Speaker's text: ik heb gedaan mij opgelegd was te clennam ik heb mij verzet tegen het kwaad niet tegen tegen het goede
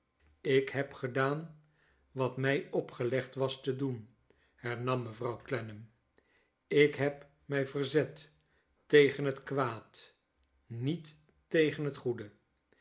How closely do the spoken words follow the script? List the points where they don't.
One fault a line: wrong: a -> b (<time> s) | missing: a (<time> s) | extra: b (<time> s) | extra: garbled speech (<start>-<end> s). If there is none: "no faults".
extra: wat (2.1 s)
extra: doen hernam mevrouw (3.8 s)
missing: tegen (11.8 s)